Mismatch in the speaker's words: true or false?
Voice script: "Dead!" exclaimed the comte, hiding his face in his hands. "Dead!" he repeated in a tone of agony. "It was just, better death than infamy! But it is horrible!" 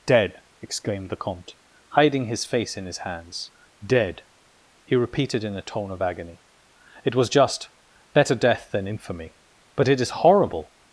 false